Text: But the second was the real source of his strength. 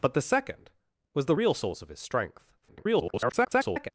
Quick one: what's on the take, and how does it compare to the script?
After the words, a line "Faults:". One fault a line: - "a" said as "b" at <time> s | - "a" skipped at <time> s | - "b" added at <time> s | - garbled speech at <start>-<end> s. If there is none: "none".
But the second was the real source of his strength. [garbled]
Faults:
- garbled speech at 2.6-3.9 s